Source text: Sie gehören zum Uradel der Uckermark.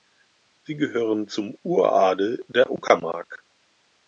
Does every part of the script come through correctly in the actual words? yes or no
yes